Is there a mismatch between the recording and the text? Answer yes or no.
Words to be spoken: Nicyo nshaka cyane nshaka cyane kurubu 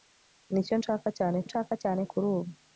no